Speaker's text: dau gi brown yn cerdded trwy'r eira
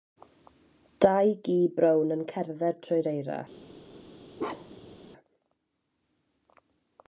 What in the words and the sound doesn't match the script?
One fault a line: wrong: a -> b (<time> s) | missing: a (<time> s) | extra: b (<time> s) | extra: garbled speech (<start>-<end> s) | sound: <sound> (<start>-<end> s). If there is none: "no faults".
sound: bark (4.4-5.0 s)